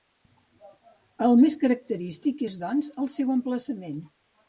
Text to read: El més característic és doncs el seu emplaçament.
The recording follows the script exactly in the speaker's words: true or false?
true